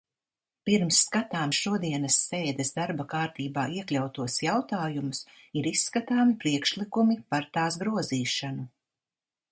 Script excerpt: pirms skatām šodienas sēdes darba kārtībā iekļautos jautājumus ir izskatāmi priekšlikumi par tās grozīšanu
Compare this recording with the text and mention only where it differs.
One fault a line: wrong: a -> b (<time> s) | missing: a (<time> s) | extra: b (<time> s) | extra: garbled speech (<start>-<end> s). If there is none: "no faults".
no faults